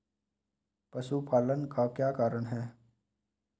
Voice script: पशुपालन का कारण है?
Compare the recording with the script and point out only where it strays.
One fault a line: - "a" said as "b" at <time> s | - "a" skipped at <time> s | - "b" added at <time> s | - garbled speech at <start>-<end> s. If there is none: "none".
- "क्या" added at 1.9 s